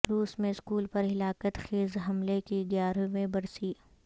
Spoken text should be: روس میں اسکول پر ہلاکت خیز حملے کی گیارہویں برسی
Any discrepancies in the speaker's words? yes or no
no